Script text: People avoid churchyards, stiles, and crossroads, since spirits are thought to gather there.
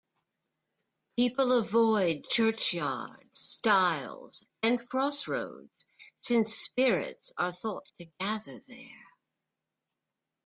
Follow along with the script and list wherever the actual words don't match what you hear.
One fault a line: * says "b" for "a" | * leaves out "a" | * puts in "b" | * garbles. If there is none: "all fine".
all fine